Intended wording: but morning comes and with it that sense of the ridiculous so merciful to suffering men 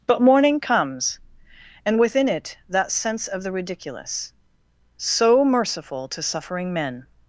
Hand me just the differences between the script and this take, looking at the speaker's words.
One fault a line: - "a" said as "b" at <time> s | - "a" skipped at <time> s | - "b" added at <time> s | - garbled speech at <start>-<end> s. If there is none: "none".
- "with" said as "within" at 2.0 s